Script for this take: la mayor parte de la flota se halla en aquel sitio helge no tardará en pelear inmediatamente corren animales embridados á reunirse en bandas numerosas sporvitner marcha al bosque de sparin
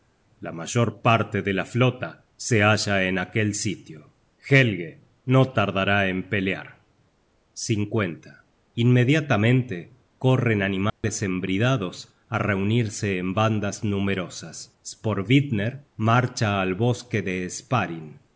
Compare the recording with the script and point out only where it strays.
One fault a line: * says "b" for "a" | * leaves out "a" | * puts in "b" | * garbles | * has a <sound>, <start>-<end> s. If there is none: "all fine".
* has a dropout, 10.9-11.0 s